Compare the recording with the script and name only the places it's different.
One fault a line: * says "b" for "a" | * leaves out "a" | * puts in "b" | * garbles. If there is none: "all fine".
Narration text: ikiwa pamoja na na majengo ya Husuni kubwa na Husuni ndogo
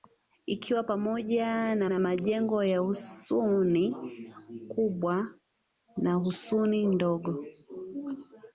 all fine